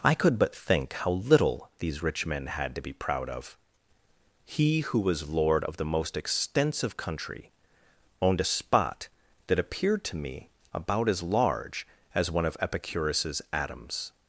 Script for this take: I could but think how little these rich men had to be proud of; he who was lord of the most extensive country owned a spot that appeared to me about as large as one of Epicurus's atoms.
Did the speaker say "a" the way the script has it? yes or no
yes